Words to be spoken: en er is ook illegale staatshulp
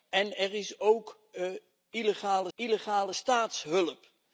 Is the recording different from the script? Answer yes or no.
yes